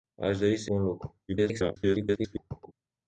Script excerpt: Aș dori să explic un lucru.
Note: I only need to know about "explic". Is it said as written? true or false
false